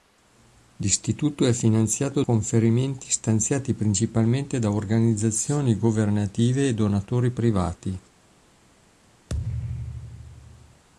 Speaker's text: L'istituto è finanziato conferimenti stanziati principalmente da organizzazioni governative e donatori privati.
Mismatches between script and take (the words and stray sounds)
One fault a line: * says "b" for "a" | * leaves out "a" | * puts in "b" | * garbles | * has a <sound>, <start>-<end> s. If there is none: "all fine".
* has a thud, 9.3-10.8 s